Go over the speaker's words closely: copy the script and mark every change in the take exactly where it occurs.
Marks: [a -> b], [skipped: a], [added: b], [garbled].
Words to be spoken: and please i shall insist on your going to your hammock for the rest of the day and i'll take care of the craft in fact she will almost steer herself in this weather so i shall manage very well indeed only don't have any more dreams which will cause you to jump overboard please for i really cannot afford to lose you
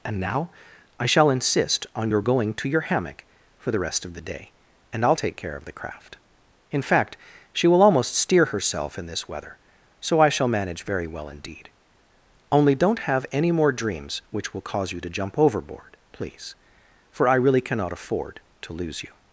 and [please -> now] i shall insist on your going to your hammock for the rest of the day and i'll take care of the craft in fact she will almost steer herself in this weather so i shall manage very well indeed only don't have any more dreams which will cause you to jump overboard please for i really cannot afford to lose you